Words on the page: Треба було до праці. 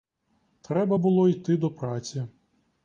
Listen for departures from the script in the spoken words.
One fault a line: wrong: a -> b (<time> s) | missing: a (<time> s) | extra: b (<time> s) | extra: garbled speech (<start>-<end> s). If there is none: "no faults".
extra: йти (1.3 s)